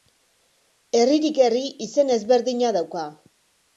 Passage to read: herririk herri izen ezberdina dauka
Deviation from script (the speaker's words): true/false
false